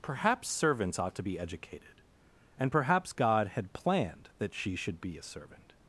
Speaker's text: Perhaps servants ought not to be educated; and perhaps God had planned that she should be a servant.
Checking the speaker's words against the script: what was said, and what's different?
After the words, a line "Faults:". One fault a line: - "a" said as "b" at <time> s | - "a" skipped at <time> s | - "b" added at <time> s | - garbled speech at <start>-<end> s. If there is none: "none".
Perhaps servants ought to be educated; and perhaps God had planned that she should be a servant.
Faults:
- "not" skipped at 1.1 s